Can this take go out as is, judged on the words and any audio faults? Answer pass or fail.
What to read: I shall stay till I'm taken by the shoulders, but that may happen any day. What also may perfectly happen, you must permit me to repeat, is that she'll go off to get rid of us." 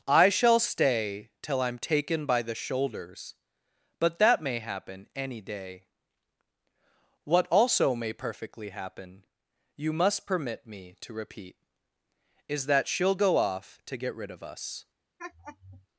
fail